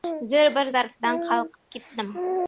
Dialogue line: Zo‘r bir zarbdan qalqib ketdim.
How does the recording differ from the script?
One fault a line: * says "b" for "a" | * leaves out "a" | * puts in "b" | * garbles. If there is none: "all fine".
all fine